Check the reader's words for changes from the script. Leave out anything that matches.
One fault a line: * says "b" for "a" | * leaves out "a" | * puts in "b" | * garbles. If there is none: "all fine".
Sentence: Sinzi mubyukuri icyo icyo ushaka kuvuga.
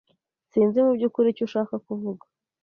* leaves out "icyo"